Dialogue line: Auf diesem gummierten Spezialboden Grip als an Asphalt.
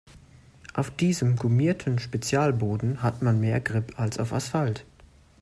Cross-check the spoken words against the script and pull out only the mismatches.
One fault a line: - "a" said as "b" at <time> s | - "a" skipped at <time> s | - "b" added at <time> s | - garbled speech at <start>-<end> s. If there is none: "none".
- "hat man mehr" added at 3.0 s
- "an" said as "auf" at 4.2 s